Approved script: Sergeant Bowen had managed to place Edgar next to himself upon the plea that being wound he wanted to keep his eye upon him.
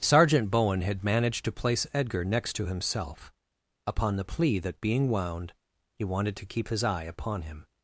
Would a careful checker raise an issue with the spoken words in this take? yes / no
no